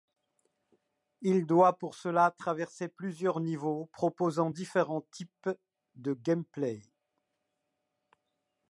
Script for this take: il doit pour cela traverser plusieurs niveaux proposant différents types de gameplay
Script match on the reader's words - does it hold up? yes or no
yes